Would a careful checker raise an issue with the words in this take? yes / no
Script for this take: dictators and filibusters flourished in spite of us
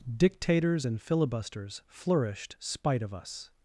yes